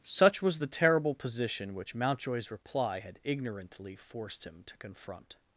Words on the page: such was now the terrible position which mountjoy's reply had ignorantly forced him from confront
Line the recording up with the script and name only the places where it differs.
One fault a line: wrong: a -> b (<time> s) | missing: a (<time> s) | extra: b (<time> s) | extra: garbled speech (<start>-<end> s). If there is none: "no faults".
missing: now (0.6 s)
wrong: from -> to (4.7 s)